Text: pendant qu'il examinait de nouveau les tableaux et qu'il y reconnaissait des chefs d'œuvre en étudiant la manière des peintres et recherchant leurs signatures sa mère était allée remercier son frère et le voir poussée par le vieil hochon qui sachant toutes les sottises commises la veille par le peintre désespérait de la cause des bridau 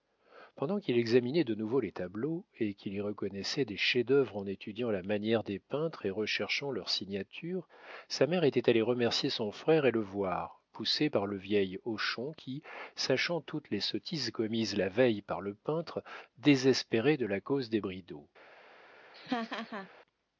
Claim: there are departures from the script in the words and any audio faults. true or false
true